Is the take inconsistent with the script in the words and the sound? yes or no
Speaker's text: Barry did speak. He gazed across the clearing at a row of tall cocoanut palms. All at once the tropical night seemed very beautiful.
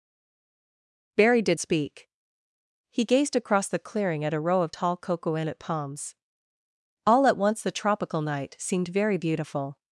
no